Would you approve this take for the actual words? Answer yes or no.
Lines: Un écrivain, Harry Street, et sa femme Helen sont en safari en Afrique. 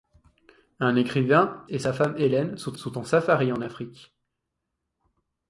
no